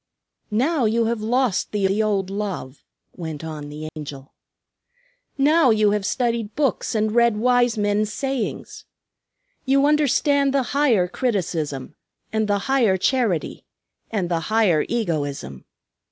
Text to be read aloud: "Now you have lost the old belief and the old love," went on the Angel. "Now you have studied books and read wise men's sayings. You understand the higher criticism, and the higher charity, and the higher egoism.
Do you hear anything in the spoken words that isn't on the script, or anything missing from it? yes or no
yes